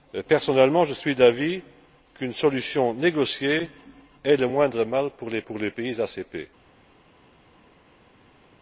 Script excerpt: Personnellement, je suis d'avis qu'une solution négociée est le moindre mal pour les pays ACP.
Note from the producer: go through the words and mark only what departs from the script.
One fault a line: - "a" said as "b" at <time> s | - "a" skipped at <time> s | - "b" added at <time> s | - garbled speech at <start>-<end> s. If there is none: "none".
- "pour les" added at 5.4 s